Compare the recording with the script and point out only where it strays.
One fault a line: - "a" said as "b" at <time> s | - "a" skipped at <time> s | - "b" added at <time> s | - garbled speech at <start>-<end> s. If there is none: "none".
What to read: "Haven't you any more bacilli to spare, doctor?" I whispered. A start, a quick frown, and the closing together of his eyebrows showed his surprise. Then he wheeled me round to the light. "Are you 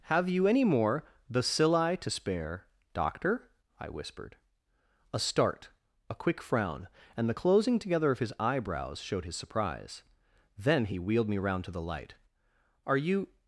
- "Haven't" said as "Have" at 0.0 s